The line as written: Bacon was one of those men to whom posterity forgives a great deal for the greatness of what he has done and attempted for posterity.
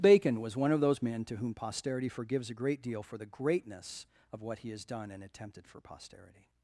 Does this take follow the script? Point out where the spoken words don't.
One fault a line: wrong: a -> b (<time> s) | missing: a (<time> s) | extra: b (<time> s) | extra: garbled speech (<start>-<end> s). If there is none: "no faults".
no faults